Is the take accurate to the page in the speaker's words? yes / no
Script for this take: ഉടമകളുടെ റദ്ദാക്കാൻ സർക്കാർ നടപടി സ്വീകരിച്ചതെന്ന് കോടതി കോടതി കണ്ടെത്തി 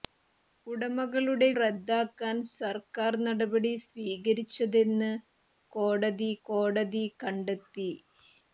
yes